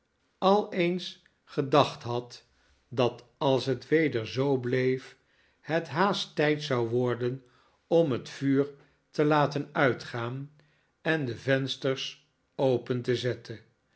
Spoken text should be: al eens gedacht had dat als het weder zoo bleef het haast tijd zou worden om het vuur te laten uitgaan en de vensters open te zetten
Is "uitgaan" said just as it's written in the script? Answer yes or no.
yes